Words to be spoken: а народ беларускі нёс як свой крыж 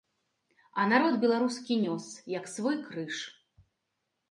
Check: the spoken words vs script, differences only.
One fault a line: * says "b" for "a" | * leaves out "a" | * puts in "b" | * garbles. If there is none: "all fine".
all fine